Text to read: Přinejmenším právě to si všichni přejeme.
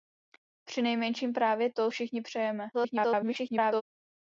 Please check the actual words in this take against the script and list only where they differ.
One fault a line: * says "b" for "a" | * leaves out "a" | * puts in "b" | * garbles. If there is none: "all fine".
* leaves out "si"
* garbles